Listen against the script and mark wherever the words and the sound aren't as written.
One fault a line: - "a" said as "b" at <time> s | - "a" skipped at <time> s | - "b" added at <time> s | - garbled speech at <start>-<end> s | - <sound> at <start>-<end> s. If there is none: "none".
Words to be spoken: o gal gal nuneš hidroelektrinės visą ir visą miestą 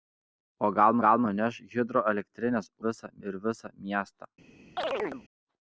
- chirp at 4.8-5.2 s